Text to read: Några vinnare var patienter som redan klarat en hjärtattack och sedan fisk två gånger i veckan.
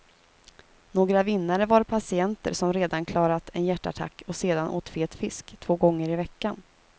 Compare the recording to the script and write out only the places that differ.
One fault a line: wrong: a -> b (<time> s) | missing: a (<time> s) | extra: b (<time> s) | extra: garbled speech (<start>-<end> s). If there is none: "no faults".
extra: åt fet (4.7 s)